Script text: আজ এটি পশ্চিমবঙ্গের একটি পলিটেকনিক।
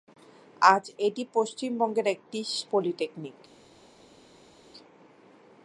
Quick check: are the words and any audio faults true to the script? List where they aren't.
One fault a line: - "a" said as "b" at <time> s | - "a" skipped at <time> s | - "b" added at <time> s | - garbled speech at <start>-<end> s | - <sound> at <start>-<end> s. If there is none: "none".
none